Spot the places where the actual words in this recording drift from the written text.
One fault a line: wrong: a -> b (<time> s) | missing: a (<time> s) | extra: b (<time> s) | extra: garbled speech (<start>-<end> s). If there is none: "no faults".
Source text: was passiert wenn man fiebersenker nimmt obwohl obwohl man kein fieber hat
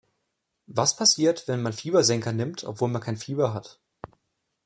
missing: obwohl (2.9 s)